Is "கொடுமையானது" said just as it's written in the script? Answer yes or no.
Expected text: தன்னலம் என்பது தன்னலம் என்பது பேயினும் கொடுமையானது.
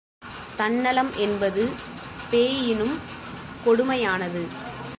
yes